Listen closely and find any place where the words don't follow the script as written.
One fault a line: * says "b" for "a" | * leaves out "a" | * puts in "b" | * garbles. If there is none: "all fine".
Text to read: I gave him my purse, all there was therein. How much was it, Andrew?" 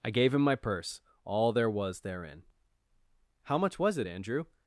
all fine